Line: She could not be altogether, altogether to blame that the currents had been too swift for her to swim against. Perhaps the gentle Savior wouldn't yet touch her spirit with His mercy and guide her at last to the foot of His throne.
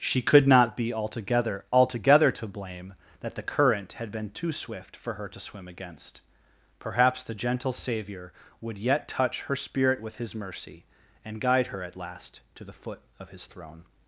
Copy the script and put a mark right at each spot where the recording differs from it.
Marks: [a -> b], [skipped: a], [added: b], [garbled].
She could not be altogether, altogether to blame that the [currents -> current] had been too swift for her to swim against. Perhaps the gentle Savior [wouldn't -> would] yet touch her spirit with His mercy and guide her at last to the foot of His throne.